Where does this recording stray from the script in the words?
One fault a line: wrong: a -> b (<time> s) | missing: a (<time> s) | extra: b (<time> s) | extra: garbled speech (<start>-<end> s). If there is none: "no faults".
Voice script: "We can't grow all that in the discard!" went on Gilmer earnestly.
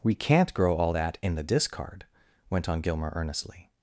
no faults